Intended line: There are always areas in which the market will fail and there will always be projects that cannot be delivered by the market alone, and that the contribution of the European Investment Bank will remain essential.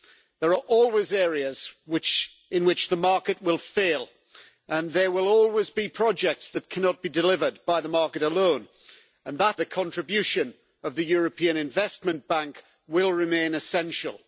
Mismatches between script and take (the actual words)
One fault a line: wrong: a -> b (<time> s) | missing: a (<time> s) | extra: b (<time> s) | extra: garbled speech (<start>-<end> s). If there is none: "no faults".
no faults